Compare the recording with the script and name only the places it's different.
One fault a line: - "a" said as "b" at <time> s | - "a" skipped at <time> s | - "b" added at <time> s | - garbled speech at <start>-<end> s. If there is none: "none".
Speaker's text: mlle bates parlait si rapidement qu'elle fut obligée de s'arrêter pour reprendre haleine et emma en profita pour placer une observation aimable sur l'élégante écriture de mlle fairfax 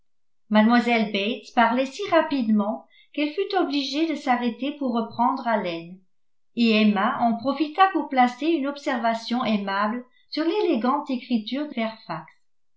- "mlle" skipped at 11.7 s